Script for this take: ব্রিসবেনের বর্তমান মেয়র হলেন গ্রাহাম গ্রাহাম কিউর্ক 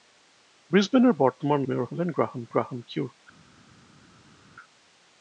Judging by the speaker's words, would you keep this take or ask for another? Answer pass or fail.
pass